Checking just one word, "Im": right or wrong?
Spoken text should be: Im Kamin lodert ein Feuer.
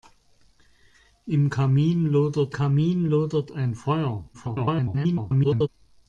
right